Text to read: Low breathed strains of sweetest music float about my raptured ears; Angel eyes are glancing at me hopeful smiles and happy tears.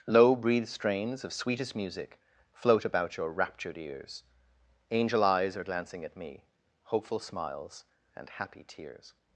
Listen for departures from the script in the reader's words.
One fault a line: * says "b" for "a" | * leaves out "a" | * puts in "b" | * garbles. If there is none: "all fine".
* says "your" for "my"